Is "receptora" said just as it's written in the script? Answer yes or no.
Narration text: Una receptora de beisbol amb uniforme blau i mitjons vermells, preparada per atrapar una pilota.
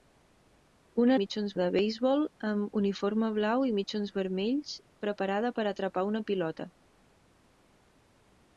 no